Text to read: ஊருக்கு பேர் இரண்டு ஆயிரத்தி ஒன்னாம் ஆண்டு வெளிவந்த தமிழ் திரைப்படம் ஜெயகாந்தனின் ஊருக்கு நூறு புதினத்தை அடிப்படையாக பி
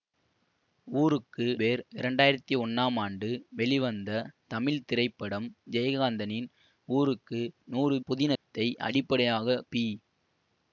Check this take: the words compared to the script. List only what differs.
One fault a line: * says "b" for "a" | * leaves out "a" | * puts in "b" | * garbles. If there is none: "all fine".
all fine